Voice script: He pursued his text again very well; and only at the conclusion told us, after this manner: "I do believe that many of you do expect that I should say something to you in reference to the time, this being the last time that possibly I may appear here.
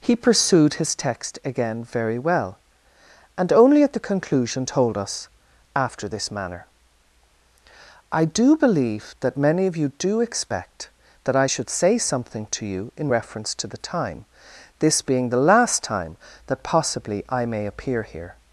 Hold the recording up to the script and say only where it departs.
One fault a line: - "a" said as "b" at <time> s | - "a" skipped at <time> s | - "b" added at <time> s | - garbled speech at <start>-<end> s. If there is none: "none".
none